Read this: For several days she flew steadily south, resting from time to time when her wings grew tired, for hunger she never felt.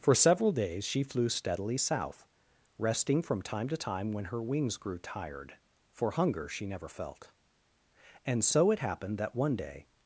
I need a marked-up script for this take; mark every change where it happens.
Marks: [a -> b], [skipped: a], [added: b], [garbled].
For several days she flew steadily south, resting from time to time when her wings grew tired, for hunger she never felt. [added: And so it happened that one day]